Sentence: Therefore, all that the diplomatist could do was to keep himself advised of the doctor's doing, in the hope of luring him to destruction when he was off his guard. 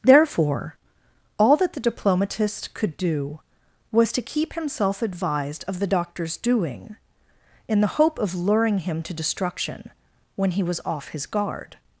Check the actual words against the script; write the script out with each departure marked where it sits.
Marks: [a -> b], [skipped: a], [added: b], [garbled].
Therefore, all that the diplomatist could do was to keep himself advised of the doctor's doing, in the hope of luring him to destruction when he was off his guard.